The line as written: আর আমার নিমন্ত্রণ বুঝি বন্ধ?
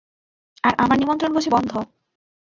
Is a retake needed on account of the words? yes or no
no